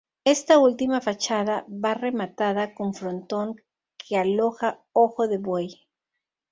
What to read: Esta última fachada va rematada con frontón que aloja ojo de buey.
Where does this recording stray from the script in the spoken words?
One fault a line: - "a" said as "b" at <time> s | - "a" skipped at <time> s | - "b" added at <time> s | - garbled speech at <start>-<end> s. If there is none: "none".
none